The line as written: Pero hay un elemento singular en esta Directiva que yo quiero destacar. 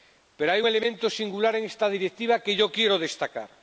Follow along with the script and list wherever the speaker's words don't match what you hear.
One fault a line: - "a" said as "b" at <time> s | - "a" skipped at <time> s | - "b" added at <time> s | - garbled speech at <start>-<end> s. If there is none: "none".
- "un" skipped at 0.6 s